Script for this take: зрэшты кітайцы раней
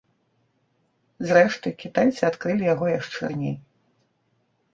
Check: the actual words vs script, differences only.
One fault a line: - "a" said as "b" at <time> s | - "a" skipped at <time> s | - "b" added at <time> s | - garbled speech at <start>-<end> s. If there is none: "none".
- "адкрылі яго яшчэ" added at 2.3 s